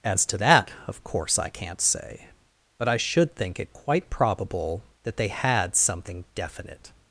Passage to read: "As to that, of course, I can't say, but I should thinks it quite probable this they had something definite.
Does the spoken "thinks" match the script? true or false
false